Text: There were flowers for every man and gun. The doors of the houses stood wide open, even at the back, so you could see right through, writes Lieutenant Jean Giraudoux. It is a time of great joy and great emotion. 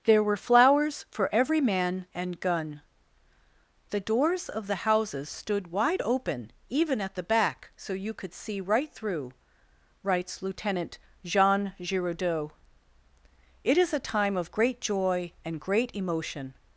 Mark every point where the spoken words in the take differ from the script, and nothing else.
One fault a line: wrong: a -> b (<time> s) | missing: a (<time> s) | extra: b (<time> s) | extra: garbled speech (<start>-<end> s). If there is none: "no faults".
no faults